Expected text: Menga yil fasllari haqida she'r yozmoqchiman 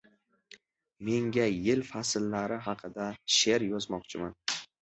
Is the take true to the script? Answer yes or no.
yes